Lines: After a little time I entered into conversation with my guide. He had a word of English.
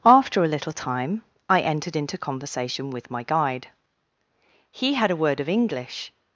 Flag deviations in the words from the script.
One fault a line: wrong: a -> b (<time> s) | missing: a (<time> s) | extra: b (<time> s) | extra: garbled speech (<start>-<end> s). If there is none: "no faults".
no faults